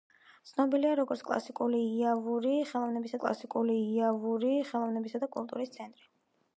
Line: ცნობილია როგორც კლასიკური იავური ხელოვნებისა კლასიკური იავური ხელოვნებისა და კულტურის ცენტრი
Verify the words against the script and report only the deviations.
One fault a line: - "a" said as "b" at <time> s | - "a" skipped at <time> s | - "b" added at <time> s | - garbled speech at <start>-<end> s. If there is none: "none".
none